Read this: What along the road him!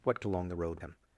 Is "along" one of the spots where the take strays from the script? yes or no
no